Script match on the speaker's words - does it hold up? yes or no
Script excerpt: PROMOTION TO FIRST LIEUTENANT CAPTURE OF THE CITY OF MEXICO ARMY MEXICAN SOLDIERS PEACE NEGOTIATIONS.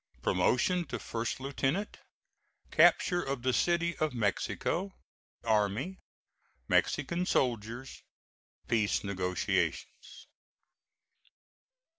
yes